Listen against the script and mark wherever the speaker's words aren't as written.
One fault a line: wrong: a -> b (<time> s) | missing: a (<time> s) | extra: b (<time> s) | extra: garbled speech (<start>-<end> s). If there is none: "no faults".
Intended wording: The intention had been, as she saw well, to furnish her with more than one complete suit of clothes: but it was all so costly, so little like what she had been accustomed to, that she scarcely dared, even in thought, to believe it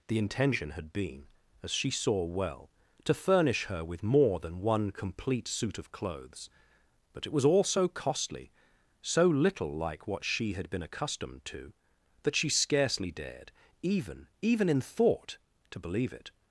extra: even (14.4 s)